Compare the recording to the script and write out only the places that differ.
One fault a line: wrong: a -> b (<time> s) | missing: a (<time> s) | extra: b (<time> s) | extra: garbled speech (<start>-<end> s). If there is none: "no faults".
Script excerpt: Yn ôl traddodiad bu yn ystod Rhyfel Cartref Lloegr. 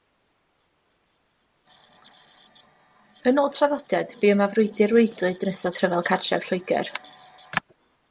extra: yma frwydr waedlyd (4.3 s)